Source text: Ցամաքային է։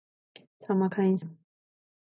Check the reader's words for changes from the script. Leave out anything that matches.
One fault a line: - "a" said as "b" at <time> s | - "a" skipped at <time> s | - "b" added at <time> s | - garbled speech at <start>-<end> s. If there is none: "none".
none